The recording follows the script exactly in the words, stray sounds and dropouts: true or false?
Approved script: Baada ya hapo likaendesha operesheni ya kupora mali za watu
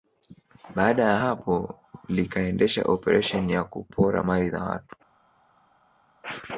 true